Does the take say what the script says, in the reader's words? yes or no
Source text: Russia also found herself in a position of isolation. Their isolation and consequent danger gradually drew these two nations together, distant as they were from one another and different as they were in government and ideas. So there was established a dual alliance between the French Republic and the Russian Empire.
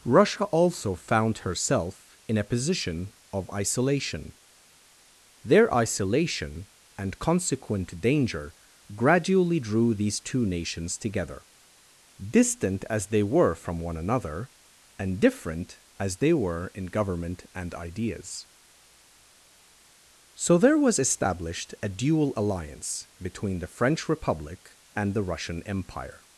yes